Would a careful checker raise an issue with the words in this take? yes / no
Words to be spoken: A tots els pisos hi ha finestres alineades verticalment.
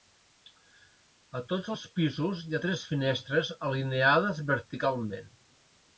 yes